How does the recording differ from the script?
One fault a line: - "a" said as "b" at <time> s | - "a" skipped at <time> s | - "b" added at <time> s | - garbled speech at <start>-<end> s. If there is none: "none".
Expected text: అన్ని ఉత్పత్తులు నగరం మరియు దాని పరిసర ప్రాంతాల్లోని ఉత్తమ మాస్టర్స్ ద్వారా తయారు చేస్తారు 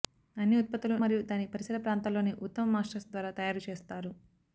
- "నగరం" skipped at 0.9 s